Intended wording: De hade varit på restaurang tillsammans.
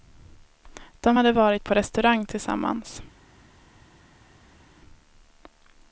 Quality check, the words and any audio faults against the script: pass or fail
pass